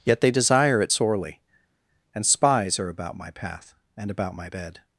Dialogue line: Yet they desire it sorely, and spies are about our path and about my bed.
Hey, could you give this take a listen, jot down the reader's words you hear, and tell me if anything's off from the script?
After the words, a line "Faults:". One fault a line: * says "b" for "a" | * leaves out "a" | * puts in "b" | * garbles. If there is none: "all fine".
Yet they desire it sorely, and spies are about my path and about my bed.
Faults:
* says "my" for "our"